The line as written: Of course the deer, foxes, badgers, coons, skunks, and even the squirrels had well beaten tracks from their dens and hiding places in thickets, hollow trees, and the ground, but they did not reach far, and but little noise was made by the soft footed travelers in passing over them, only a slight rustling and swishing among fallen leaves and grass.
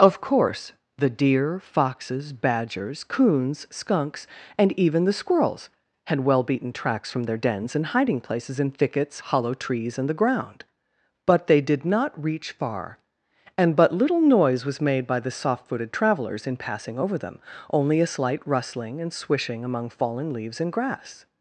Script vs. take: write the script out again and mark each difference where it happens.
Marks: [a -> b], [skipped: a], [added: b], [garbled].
Of course the deer, foxes, badgers, coons, skunks, and even the squirrels had well beaten tracks from their dens and hiding places in thickets, hollow trees, and the ground, but they did not reach far, and but little noise was made by the soft footed travelers in passing over them, only a slight rustling and swishing among fallen leaves and grass.